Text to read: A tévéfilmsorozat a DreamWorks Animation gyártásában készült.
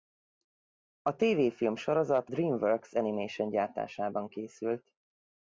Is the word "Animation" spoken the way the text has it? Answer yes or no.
yes